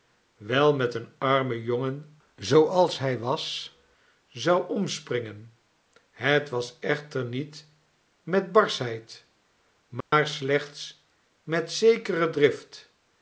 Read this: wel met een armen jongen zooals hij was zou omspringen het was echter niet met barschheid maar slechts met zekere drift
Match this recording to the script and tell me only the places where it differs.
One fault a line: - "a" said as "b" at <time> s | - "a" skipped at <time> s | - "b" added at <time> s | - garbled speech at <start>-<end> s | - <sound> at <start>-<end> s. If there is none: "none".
- dropout at 10.0-10.1 s